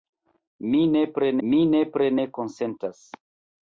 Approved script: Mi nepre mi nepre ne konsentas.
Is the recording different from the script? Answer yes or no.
no